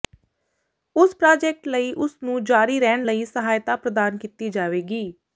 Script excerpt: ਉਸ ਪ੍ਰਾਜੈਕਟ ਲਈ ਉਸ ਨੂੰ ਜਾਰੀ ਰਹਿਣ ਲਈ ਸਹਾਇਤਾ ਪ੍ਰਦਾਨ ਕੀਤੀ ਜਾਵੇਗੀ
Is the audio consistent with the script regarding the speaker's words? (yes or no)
yes